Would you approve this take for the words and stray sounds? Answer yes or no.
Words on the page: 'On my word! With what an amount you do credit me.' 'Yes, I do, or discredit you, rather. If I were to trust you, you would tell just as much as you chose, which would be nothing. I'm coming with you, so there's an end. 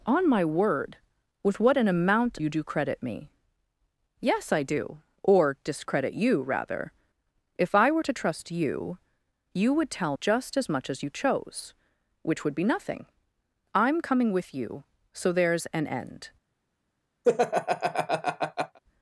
no